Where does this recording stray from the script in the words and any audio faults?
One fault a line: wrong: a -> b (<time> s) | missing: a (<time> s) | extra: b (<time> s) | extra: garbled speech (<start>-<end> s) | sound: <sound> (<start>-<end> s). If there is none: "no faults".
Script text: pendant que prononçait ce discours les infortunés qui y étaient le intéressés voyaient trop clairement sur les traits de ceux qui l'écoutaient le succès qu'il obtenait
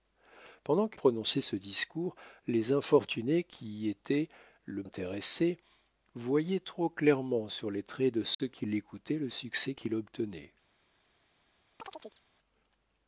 sound: dropout (8.3-8.4 s)
sound: chirp (11.8-12.2 s)